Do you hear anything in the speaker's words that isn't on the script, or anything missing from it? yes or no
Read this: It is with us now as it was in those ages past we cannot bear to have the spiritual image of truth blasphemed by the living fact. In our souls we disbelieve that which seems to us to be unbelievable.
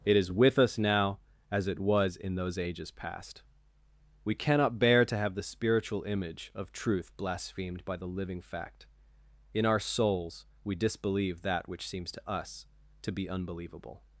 no